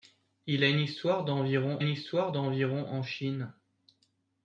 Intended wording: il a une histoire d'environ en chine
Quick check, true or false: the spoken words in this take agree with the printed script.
false